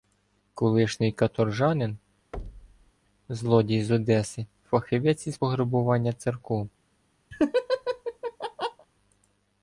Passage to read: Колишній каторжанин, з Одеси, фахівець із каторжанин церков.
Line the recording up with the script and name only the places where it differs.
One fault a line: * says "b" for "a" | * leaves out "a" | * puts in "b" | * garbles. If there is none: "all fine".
* puts in "злодій"
* says "пограбування" for "каторжанин"